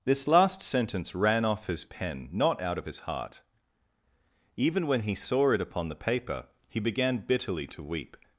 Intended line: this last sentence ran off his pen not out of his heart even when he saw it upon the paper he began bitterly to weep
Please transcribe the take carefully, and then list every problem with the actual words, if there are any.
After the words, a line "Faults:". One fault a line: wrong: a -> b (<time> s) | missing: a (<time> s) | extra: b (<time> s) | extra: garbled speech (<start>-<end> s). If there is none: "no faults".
this last sentence ran off his pen not out of his heart even when he saw it upon the paper he began bitterly to weep
Faults:
no faults